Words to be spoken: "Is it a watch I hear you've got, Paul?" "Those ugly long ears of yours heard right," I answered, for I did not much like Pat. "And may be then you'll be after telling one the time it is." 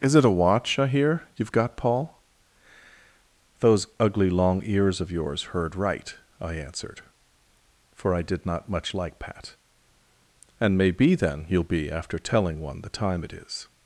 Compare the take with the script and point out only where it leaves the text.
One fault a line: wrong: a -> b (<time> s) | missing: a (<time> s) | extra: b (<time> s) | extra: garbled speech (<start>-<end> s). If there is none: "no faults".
no faults